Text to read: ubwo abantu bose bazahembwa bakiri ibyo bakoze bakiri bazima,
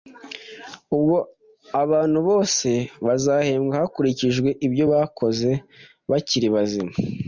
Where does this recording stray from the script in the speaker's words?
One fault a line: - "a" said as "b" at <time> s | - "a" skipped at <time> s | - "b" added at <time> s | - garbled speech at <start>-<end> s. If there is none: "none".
- "bakiri" said as "hakurikijwe" at 3.8 s